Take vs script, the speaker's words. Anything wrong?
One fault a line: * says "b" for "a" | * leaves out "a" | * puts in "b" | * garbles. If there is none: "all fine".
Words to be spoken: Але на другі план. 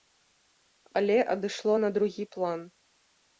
* puts in "адышло"